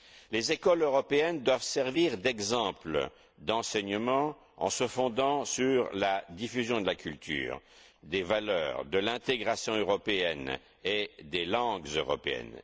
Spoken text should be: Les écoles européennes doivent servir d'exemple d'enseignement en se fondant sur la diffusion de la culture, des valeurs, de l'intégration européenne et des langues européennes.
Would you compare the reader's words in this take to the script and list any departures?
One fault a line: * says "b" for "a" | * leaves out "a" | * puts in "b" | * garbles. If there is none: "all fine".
all fine